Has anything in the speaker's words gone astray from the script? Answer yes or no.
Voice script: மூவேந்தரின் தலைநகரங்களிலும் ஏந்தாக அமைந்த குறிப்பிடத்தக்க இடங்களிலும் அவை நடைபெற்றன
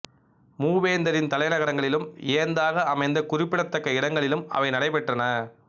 no